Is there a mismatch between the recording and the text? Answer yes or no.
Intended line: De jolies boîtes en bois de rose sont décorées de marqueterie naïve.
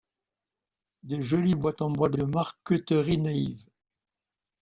yes